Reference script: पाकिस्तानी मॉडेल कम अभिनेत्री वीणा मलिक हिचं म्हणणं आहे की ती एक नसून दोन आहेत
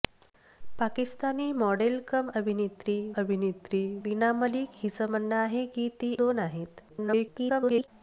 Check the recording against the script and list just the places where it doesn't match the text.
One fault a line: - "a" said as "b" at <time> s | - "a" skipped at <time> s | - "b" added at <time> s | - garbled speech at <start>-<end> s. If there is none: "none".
- "अभिनेत्री" added at 3.2 s
- "एक नसून" skipped at 6.1 s
- garbled speech at 6.9-7.9 s